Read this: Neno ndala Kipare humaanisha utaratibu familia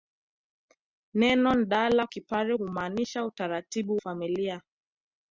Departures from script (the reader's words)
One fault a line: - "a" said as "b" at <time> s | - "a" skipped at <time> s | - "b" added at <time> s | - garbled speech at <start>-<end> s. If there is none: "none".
none